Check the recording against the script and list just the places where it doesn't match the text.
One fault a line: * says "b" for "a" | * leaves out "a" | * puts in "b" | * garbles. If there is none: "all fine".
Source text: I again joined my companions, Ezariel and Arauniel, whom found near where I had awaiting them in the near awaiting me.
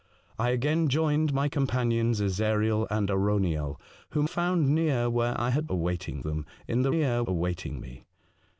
all fine